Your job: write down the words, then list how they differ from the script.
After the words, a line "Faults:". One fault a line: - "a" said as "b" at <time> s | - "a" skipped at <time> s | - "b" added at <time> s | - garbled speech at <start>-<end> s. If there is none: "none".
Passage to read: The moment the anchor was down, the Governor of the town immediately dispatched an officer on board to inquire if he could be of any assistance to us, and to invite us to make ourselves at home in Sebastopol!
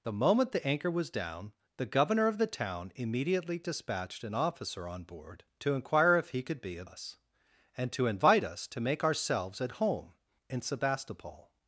The moment the anchor was down, the Governor of the town immediately dispatched an officer on board to inquire if he could be of us, and to invite us to make ourselves at home in Sebastopol!
Faults:
- "any assistance to" skipped at 6.9 s